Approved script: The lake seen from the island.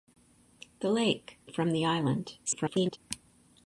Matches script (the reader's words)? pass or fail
fail